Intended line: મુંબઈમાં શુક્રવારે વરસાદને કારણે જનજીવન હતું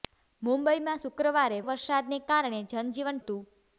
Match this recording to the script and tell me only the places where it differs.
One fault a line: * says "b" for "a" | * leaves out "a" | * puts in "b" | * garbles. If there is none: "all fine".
all fine